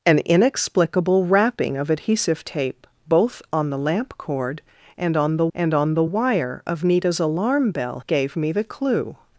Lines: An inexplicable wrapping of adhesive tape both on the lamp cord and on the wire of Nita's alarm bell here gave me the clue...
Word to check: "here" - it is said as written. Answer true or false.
false